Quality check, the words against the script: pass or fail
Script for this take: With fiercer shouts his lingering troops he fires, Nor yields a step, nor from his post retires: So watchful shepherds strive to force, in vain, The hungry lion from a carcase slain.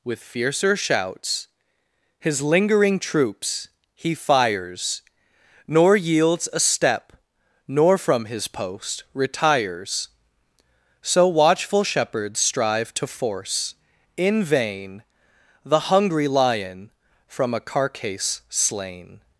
pass